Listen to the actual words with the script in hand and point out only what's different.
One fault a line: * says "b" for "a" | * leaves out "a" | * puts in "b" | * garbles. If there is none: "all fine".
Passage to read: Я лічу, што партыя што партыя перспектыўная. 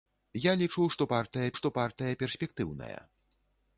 all fine